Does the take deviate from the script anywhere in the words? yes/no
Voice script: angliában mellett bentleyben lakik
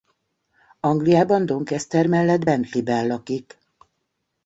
yes